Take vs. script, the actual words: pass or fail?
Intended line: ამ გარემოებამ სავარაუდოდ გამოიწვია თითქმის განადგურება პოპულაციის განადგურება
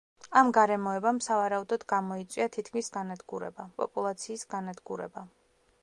pass